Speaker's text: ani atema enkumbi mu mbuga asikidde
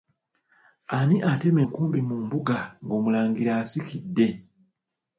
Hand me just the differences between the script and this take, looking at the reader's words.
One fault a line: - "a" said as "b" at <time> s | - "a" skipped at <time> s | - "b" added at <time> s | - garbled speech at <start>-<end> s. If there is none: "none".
- "ng'omulangira" added at 2.8 s